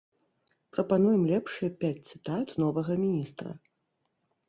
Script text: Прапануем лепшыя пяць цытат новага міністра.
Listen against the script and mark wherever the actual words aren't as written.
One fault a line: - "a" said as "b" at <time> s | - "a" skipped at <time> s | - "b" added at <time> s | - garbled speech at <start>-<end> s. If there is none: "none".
none